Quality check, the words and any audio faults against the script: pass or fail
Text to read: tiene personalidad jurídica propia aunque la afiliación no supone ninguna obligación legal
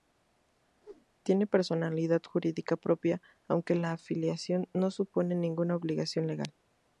fail